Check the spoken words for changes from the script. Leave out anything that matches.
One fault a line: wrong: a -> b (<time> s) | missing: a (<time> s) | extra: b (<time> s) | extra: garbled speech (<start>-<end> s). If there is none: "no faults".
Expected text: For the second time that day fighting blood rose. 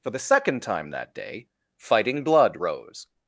no faults